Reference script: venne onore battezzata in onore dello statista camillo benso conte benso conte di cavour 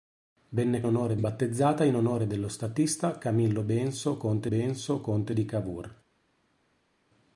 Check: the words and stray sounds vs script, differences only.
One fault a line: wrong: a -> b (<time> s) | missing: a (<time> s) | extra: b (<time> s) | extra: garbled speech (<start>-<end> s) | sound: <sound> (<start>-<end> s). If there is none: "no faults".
no faults